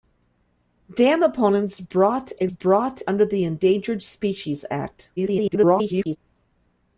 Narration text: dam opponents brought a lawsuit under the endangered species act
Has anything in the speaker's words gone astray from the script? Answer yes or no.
yes